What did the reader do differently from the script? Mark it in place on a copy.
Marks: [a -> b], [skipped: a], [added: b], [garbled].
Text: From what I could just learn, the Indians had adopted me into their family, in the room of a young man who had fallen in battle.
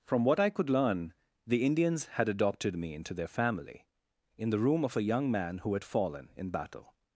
From what I could [skipped: just] learn, the Indians had adopted me into their family, in the room of a young man who had fallen in battle.